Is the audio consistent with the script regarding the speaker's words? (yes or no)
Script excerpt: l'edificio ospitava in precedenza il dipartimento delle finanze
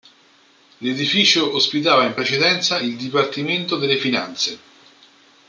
yes